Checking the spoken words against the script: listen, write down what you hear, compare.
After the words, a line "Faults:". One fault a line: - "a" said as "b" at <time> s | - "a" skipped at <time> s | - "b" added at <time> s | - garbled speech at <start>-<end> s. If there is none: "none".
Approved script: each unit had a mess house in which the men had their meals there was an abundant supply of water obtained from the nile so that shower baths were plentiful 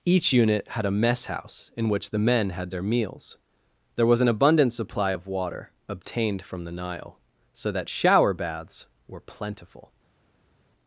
each unit had a mess house in which the men had their meals there was an abundant supply of water obtained from the nile so that shower baths were plentiful
Faults:
none